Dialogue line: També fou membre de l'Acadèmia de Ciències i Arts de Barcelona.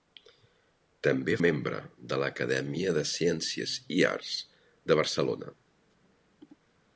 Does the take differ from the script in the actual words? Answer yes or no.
yes